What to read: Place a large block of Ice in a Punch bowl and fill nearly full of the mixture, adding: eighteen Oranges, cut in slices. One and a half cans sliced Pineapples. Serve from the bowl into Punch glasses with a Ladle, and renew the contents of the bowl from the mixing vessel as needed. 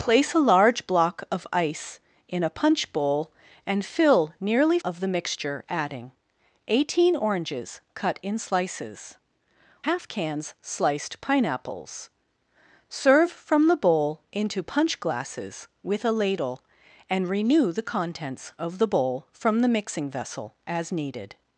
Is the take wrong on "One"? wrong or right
wrong